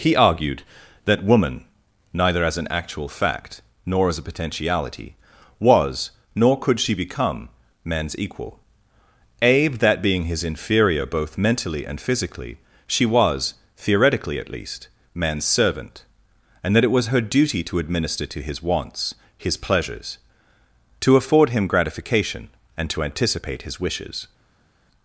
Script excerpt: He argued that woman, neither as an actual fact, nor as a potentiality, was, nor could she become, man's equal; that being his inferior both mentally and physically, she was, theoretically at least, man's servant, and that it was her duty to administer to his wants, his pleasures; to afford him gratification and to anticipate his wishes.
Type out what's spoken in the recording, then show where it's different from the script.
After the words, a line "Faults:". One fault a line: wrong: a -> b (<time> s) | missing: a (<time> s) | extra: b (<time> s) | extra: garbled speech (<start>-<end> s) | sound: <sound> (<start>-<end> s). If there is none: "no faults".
He argued that woman, neither as an actual fact, nor as a potentiality, was, nor could she become, man's equal; abe that being his inferior both mentally and physically, she was, theoretically at least, man's servant, and that it was her duty to administer to his wants, his pleasures; to afford him gratification and to anticipate his wishes.
Faults:
extra: abe (9.4 s)